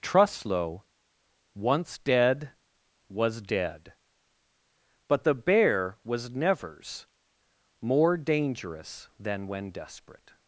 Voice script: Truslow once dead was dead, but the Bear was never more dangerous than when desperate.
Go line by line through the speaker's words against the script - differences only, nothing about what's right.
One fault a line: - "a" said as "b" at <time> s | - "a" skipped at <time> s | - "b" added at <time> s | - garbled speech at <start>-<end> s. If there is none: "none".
- "never" said as "nevers" at 6.3 s